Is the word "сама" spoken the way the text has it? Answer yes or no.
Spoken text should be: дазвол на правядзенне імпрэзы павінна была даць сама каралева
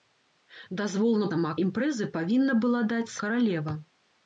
no